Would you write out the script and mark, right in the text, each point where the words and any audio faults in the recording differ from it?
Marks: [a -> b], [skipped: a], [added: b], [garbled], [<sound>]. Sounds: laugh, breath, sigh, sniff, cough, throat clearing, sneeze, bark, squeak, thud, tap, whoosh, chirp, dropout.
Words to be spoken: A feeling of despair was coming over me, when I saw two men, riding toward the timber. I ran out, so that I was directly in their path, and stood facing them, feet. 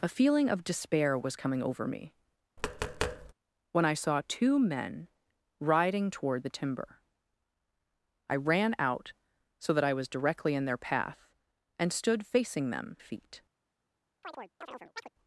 A feeling of despair was coming over me, [tap] when I saw two men, riding toward the timber. I ran out, so that I was directly in their path, and stood facing them, feet. [chirp]